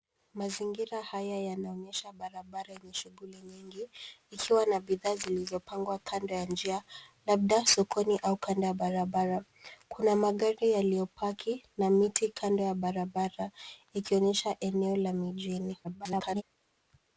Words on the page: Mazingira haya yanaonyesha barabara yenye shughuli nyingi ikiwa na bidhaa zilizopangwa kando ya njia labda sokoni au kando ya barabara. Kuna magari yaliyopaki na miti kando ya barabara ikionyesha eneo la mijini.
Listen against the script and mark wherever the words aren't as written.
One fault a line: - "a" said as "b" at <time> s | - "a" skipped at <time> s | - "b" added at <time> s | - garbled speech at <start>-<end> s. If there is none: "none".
- garbled speech at 15.8-16.4 s